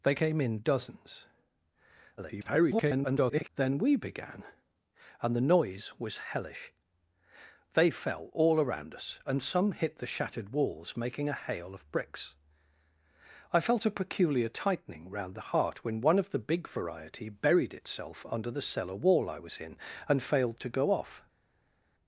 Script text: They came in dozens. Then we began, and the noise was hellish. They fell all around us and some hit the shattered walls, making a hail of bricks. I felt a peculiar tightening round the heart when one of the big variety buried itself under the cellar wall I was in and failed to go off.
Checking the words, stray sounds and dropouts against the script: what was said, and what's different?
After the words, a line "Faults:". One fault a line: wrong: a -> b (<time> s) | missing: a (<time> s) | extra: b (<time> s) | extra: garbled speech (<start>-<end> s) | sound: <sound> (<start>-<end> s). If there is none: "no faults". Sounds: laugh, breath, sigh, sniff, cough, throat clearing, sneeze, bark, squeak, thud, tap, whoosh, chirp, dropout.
They came in dozens. [garbled] Then we began, and the noise was hellish. They fell all around us and some hit the shattered walls, making a hail of bricks. I felt a peculiar tightening round the heart when one of the big variety buried itself under the cellar wall I was in and failed to go off.
Faults:
extra: garbled speech (2.2-3.5 s)